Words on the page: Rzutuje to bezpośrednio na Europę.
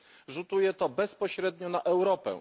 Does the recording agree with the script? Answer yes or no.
yes